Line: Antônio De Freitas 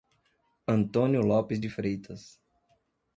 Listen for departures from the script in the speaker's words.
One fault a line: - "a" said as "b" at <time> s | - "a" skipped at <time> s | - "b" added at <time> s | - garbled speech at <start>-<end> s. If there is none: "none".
- "Lopes" added at 1.2 s